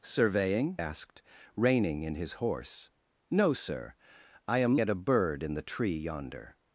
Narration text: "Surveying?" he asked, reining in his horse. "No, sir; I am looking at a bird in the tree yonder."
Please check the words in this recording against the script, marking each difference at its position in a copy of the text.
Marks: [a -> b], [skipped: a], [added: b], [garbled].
"Surveying?" [skipped: he] asked, reining in his horse. "No, sir; I am [skipped: looking] at a bird in the tree yonder."